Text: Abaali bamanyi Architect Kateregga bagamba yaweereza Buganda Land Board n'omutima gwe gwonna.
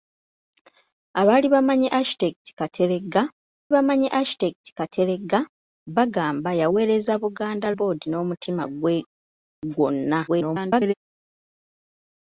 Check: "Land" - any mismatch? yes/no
yes